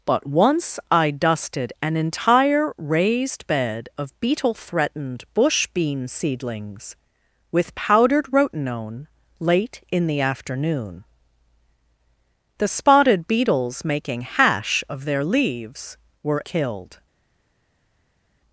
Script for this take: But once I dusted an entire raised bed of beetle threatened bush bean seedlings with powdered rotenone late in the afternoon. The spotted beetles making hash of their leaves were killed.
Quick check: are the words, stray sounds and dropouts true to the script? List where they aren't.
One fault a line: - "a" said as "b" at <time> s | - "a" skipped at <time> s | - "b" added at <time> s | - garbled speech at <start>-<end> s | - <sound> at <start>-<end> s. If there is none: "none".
none